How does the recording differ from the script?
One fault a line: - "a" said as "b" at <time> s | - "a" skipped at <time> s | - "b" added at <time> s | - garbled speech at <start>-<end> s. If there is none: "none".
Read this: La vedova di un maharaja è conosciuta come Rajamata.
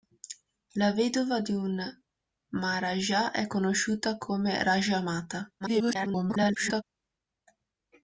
- garbled speech at 5.6-6.8 s